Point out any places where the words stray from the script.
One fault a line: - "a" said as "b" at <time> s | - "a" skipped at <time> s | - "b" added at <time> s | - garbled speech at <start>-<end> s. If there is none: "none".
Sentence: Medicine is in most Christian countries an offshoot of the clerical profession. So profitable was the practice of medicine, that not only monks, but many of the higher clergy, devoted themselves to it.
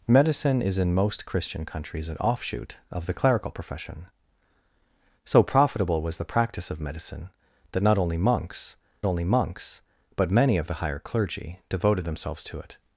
- "only monks" added at 9.0 s